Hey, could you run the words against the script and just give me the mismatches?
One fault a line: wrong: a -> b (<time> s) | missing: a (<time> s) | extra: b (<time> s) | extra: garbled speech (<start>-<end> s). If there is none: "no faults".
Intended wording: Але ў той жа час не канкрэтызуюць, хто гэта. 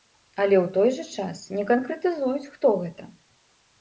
no faults